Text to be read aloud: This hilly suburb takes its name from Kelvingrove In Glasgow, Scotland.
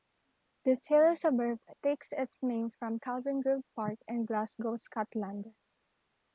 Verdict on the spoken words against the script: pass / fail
fail